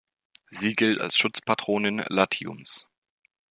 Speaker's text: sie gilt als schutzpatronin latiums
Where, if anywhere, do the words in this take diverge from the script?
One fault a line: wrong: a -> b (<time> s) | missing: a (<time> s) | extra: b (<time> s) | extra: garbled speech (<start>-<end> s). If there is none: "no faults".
no faults